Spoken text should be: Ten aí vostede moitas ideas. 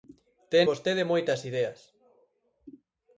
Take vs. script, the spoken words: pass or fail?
fail